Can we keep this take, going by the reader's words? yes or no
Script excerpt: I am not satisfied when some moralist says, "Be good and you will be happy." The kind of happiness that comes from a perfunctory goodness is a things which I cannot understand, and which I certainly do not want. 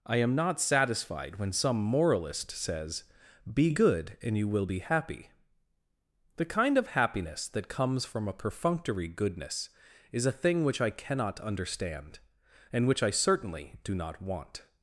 no